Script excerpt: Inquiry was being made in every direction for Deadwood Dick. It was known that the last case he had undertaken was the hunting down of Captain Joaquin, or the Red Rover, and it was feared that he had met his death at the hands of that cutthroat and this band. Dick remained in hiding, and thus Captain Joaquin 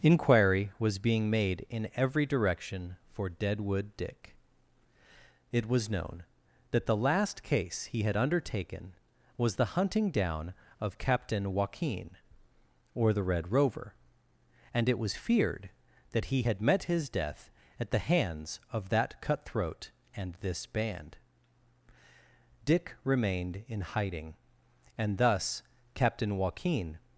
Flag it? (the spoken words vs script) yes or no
no